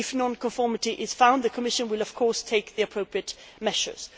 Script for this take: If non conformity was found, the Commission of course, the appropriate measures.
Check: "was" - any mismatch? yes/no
yes